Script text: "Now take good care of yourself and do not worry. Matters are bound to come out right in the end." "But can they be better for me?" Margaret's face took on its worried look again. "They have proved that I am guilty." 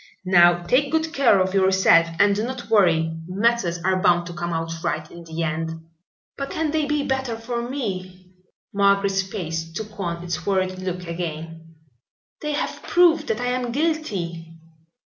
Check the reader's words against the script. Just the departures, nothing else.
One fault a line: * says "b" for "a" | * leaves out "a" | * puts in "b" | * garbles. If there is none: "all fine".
all fine